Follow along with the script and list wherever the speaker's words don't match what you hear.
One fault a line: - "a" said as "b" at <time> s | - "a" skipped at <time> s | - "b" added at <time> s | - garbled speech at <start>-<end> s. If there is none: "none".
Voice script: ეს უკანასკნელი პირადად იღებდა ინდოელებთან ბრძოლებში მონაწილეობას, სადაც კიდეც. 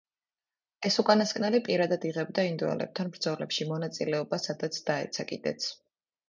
- "დაეცა" added at 4.9 s